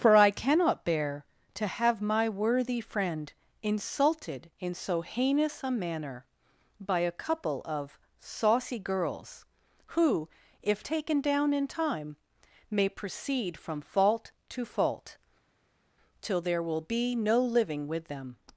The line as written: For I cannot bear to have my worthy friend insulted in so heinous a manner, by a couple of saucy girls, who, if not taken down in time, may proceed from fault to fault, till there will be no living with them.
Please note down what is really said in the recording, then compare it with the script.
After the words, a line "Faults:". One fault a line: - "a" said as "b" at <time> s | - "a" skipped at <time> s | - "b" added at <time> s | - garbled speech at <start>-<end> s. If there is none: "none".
For I cannot bear to have my worthy friend insulted in so heinous a manner, by a couple of saucy girls, who, if taken down in time, may proceed from fault to fault, till there will be no living with them.
Faults:
- "not" skipped at 10.9 s